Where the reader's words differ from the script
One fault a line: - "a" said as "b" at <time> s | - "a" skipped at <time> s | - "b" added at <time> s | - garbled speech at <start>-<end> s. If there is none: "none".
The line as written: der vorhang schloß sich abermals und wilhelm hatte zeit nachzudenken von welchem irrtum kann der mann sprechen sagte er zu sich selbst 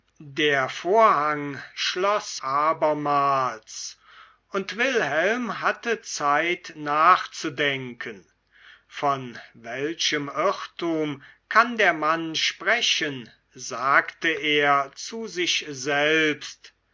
- "sich" skipped at 2.4 s